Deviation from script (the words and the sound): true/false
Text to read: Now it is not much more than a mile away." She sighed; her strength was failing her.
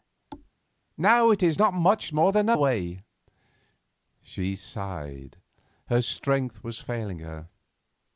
true